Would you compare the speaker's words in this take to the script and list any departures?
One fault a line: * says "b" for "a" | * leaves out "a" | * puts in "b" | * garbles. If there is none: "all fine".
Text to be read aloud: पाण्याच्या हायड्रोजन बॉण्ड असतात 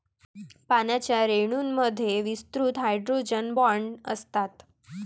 * puts in "रेणूंमध्ये विस्तृत"